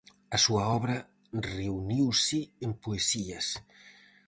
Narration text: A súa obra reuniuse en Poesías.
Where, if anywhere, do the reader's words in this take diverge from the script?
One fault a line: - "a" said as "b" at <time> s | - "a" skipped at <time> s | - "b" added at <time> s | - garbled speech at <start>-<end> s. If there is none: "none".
none